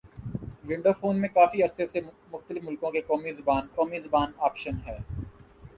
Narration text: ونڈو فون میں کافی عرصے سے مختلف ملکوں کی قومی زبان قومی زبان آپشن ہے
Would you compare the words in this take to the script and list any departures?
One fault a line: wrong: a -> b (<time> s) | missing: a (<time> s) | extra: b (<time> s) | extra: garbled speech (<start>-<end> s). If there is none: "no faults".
no faults